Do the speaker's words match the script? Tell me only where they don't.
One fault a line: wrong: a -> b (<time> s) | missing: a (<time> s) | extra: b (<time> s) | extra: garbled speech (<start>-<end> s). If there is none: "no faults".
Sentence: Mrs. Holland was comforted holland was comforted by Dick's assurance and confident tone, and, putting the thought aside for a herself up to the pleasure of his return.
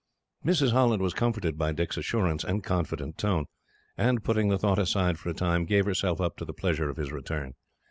missing: holland was comforted (1.6 s)
extra: time gave (5.3 s)